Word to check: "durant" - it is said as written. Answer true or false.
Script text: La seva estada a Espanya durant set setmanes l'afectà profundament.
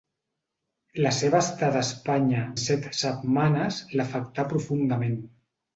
false